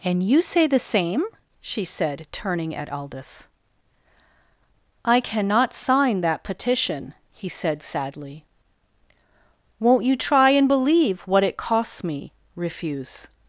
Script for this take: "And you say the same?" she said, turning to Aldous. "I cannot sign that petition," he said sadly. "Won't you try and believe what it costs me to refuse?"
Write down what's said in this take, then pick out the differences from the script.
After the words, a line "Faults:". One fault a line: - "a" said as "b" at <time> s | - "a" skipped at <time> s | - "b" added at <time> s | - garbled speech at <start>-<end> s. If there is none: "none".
"And you say the same?" she said, turning at Aldous. "I cannot sign that petition," he said sadly. "Won't you try and believe what it costs me refuse?"
Faults:
- "to" said as "at" at 2.8 s
- "to" skipped at 12.3 s